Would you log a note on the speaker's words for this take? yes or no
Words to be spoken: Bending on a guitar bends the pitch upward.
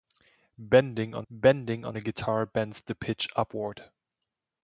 yes